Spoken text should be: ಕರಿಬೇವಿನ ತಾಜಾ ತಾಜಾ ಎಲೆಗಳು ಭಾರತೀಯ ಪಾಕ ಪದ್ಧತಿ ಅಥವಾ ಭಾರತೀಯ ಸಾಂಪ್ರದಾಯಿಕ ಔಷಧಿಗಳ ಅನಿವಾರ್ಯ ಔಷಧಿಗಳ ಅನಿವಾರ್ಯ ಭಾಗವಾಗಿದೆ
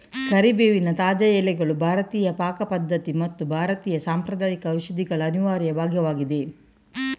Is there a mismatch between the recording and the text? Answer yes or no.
yes